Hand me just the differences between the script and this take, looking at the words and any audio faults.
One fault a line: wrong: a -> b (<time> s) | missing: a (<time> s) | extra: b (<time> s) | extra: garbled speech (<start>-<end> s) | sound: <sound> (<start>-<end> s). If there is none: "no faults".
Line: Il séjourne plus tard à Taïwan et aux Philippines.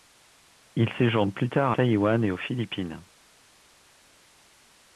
missing: à (1.7 s)